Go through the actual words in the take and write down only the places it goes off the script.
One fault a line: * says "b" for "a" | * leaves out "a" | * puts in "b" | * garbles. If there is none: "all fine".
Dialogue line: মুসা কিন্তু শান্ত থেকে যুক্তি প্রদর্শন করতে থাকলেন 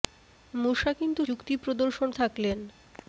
* leaves out "শান্ত থেকে"
* leaves out "করতে"